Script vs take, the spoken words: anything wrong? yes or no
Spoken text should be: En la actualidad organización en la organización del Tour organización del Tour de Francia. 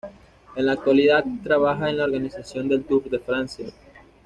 yes